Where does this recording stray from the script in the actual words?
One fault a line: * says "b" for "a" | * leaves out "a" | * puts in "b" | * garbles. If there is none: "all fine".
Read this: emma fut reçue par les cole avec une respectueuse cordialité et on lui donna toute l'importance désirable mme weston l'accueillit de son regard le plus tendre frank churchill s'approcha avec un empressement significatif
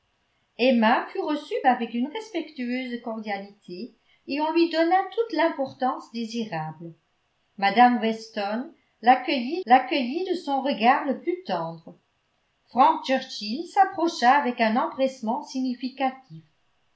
* leaves out "par les cole"
* puts in "l'accueillit"